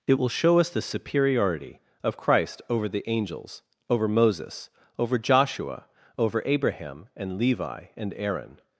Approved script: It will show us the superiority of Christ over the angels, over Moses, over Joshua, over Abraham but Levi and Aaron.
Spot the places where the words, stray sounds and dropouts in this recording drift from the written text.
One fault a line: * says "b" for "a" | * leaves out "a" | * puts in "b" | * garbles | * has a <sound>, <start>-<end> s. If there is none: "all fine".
* says "and" for "but"